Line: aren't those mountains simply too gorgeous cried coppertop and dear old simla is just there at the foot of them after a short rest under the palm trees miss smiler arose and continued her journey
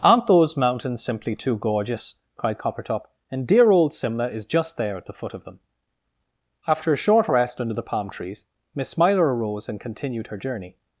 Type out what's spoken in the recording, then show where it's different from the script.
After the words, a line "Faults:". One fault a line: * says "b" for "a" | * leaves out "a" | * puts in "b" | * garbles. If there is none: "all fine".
aren't those mountains simply too gorgeous cried coppertop and dear old simla is just there at the foot of them after a short rest under the palm trees miss smiler arose and continued her journey
Faults:
all fine